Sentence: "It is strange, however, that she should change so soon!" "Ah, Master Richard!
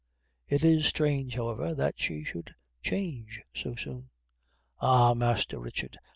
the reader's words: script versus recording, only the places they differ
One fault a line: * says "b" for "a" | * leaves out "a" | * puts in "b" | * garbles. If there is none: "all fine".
all fine